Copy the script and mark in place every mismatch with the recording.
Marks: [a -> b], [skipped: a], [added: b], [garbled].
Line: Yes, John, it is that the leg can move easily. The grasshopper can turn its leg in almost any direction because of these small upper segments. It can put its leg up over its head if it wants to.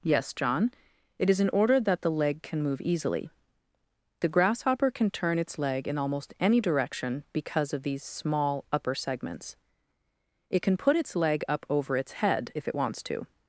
Yes, John, it is [added: in order] that the leg can move easily. The grasshopper can turn its leg in almost any direction because of these small upper segments. It can put its leg up over its head if it wants to.